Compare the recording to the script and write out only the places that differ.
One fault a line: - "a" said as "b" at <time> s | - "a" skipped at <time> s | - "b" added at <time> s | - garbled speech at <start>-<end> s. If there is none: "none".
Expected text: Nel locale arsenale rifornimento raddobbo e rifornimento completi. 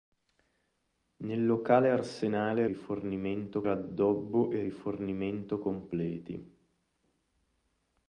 none